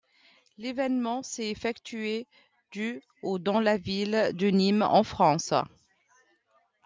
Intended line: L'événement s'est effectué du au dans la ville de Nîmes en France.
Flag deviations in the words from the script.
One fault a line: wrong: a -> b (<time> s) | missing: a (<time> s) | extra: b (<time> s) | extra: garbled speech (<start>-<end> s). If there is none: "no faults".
no faults